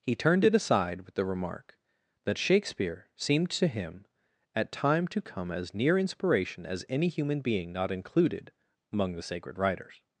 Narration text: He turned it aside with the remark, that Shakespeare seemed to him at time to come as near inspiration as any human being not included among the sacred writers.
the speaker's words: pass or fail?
pass